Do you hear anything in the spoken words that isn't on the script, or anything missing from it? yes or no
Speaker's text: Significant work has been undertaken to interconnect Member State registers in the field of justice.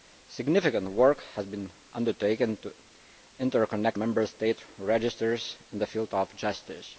no